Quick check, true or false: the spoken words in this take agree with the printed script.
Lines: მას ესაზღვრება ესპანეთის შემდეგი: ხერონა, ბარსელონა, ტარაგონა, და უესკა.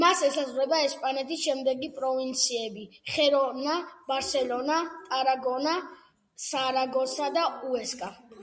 false